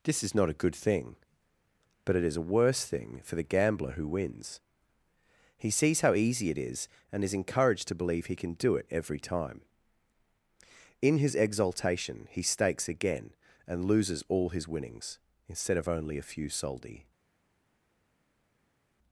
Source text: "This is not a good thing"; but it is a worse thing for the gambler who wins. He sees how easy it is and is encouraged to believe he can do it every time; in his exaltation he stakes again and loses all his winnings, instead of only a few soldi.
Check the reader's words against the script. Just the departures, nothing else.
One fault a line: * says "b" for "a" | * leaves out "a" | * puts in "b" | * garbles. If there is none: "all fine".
all fine